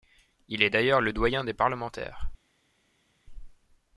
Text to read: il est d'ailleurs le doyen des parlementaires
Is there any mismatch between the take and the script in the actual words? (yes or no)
no